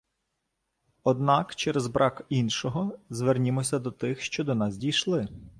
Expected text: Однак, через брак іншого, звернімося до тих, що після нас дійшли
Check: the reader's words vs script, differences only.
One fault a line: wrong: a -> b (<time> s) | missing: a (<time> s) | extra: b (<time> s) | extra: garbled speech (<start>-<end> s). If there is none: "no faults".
wrong: після -> до (4.4 s)